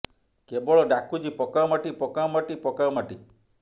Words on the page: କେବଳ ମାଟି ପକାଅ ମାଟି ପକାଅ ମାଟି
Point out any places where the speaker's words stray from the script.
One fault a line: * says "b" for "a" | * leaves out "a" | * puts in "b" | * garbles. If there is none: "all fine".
* puts in "ଡାକୁଛି ପକାଅ"